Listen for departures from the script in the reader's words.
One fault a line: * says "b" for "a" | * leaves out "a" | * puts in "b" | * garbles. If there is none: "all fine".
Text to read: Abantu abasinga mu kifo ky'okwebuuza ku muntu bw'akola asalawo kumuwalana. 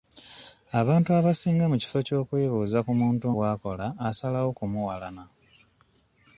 all fine